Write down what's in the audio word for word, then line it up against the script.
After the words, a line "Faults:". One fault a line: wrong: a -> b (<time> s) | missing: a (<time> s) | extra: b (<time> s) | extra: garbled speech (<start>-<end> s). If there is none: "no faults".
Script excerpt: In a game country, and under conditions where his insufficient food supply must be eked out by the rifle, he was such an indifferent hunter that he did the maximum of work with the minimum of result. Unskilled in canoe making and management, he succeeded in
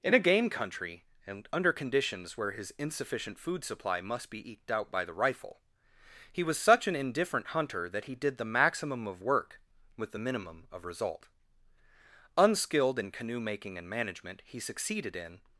In a game country, and under conditions where his insufficient food supply must be eked out by the rifle, he was such an indifferent hunter that he did the maximum of work with the minimum of result. Unskilled in canoe making and management, he succeeded in
Faults:
no faults